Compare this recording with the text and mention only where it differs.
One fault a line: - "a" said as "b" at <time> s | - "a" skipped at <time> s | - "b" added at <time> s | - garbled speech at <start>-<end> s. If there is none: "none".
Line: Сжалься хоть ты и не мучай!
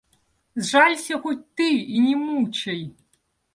none